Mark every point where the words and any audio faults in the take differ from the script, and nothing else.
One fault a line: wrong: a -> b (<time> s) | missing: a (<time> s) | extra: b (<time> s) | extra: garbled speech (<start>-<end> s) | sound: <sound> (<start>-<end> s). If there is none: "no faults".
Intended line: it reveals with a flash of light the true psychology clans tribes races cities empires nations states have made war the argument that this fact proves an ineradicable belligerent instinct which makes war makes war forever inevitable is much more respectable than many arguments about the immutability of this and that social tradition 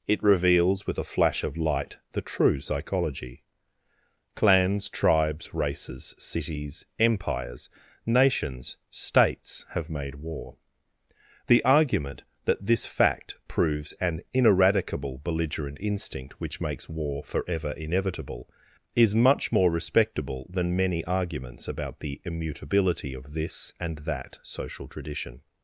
missing: makes war (17.2 s)